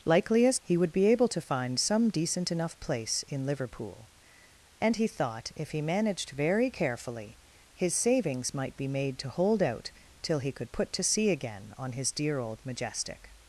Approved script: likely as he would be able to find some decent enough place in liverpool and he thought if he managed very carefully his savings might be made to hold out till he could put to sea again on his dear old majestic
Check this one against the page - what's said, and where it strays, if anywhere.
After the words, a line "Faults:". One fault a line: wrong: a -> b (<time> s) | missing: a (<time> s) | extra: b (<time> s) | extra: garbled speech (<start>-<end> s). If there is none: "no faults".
likely as he would be able to find some decent enough place in liverpool and he thought if he managed very carefully his savings might be made to hold out till he could put to sea again on his dear old majestic
Faults:
no faults